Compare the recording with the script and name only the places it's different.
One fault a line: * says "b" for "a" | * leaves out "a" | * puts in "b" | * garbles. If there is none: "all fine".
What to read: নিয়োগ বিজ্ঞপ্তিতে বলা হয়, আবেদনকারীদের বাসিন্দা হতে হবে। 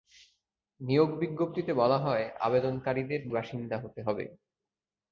all fine